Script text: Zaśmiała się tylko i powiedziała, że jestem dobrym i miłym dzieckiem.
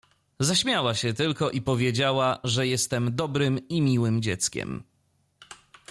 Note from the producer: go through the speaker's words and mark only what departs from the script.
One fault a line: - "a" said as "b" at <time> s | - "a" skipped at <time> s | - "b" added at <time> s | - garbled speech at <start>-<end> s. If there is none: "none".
none